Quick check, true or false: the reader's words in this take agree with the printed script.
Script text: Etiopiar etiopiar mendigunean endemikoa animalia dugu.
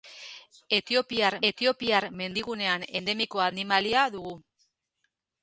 true